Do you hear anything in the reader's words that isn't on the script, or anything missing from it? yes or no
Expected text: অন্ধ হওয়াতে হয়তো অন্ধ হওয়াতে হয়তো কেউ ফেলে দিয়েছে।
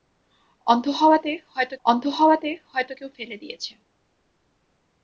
no